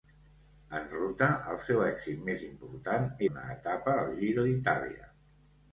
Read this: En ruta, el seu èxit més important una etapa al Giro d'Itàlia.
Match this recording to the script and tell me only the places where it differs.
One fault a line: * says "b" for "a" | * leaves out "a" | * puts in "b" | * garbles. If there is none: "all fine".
all fine